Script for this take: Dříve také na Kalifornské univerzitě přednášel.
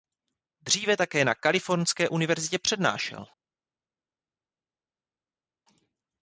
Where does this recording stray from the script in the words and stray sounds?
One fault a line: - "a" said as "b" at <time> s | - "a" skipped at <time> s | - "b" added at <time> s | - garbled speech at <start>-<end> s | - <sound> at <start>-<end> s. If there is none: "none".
none